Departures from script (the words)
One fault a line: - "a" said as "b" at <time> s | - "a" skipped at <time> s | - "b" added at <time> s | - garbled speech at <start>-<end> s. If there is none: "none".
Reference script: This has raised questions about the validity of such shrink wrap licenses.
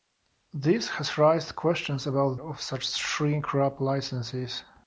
- "the validity" skipped at 2.4 s